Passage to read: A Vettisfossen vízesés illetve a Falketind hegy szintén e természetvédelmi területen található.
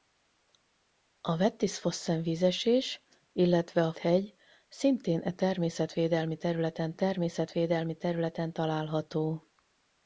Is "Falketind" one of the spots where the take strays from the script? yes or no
yes